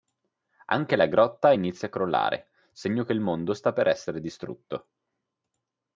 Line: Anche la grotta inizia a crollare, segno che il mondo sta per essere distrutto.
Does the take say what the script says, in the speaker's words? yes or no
yes